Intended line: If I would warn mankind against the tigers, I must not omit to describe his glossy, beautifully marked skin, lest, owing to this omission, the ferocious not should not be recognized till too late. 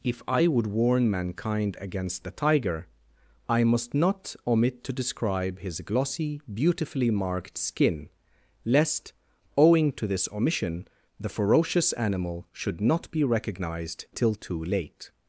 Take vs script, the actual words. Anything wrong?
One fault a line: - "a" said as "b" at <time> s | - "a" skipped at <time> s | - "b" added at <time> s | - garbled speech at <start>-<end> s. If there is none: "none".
- "tigers" said as "tiger" at 2.3 s
- "not" said as "animal" at 11.9 s